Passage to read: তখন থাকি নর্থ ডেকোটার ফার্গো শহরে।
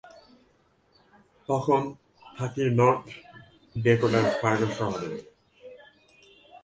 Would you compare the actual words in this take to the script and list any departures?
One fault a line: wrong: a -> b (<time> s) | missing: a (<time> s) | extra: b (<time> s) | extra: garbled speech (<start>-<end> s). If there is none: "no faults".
no faults